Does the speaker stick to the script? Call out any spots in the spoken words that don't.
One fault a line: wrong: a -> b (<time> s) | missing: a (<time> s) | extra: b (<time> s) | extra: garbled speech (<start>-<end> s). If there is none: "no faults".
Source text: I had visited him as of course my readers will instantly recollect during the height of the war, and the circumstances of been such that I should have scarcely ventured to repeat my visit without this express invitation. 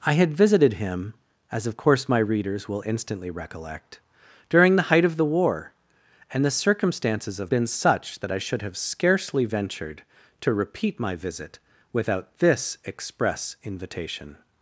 no faults